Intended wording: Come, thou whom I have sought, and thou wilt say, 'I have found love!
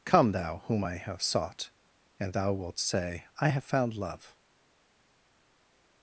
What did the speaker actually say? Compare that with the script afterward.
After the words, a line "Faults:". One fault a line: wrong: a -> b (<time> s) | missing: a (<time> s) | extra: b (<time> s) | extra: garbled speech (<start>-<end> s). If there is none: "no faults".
Come, thou whom I have sought, and thou wilt say, 'I have found love!
Faults:
no faults